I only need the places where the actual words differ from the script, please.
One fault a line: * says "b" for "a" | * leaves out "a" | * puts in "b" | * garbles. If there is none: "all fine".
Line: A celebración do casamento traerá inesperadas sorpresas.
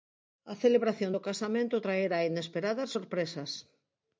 all fine